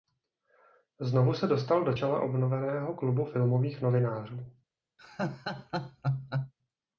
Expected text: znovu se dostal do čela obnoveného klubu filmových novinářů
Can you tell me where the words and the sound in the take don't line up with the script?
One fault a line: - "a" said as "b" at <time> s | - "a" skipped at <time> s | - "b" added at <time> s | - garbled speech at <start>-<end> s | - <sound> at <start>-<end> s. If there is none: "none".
- laugh at 5.0-6.5 s